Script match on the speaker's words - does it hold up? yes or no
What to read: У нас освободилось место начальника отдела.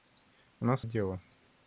no